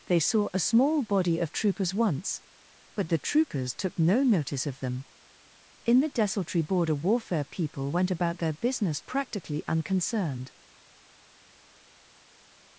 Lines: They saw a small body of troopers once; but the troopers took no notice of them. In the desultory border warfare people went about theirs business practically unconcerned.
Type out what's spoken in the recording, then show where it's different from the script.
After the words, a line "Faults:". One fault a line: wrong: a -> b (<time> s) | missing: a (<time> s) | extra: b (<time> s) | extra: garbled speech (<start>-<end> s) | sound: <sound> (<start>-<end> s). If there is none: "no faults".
They saw a small body of troopers once; but the troopers took no notice of them. In the desultory border warfare people went about their business practically unconcerned.
Faults:
wrong: theirs -> their (8.4 s)